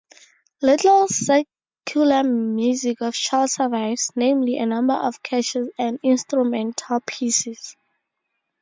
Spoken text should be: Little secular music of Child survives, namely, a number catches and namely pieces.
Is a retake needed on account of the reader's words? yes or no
yes